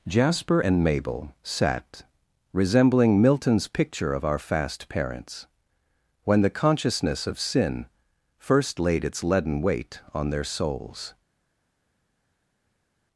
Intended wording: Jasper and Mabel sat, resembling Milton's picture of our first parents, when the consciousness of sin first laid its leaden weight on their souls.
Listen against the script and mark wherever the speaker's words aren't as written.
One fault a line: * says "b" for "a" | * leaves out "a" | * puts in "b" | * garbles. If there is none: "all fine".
* says "fast" for "first"